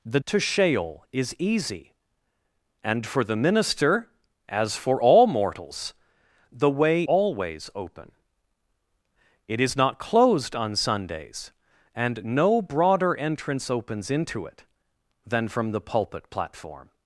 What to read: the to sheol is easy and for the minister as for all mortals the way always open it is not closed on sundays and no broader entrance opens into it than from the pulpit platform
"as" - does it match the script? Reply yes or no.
yes